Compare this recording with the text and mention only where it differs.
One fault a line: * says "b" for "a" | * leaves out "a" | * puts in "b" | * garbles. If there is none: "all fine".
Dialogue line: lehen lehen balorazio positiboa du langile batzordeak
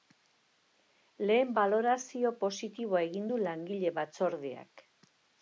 * leaves out "lehen"
* puts in "egin"